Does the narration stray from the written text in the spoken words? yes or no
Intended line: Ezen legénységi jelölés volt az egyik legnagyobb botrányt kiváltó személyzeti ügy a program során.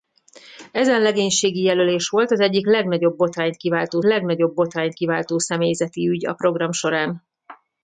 yes